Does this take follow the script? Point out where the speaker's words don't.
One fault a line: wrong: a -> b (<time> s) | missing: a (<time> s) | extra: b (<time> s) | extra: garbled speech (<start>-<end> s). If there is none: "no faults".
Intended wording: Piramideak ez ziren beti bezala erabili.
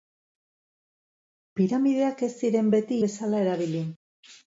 no faults